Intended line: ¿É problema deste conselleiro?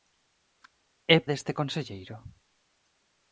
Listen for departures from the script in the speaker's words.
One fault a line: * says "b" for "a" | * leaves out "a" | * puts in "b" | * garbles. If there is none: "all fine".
* leaves out "problema"